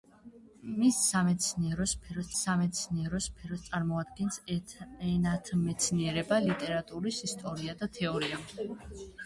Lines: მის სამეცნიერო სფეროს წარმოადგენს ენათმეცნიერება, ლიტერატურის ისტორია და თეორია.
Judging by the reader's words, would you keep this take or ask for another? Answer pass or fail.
fail